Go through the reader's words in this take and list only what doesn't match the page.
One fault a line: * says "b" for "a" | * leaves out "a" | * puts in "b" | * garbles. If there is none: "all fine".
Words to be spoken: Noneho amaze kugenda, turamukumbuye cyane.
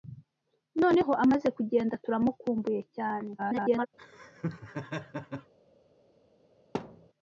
* garbles